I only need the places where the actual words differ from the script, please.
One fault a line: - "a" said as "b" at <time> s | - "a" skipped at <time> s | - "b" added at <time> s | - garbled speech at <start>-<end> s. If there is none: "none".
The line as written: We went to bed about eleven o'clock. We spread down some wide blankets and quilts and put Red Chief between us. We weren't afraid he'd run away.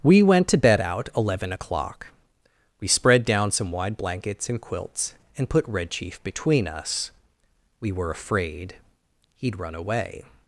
- "about" said as "out" at 0.8 s
- "weren't" said as "were" at 7.9 s